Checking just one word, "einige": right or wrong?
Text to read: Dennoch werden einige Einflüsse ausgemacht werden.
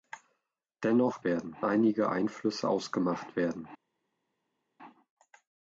right